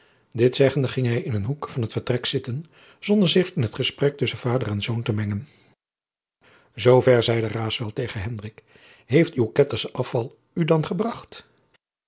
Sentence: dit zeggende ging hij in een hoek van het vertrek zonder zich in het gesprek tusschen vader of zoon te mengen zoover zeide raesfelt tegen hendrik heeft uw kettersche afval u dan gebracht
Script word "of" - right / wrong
wrong